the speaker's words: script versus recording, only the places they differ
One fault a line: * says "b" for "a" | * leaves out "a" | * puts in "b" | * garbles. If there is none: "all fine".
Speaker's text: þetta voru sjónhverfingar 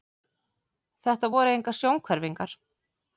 * puts in "engar"